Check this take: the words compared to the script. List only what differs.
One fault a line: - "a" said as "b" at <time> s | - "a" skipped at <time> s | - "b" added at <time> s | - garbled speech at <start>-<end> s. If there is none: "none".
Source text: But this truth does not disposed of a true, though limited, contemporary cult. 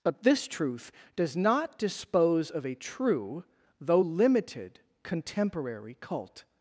- "disposed" said as "dispose" at 1.8 s